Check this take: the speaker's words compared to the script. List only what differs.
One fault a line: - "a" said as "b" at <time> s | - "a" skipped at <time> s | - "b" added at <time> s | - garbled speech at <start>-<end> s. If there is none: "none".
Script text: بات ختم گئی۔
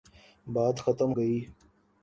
none